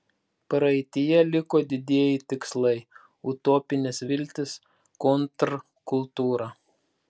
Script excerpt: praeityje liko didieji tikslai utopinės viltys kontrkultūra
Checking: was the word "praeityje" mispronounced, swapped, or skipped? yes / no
no